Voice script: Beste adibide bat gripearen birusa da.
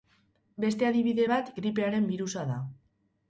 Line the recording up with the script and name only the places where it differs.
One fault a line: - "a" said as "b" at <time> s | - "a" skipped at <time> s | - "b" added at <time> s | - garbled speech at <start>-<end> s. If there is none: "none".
none